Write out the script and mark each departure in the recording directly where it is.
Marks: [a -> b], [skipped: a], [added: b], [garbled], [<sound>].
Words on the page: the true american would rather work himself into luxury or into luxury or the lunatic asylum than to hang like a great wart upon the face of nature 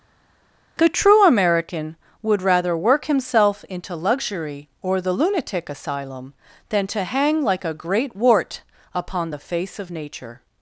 the true american would rather work himself into luxury or [skipped: into luxury or] the lunatic asylum than to hang like a great wart upon the face of nature